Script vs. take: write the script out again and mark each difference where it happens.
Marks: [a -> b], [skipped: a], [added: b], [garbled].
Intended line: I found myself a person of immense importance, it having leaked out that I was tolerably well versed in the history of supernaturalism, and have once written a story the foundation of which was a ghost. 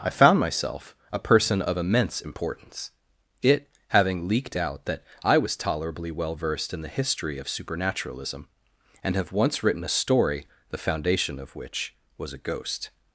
I found myself a person of immense importance, it having leaked out that I was tolerably well versed in the history of supernaturalism, and have once written a story the foundation of which was a ghost.